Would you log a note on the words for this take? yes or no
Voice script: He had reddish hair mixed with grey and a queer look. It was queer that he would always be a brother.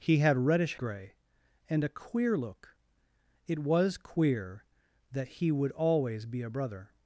yes